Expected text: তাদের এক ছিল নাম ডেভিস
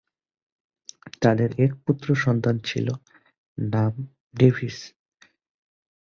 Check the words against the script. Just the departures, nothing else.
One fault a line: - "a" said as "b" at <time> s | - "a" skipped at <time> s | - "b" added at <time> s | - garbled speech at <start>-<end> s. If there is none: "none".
- "পুত্র সন্তান" added at 1.9 s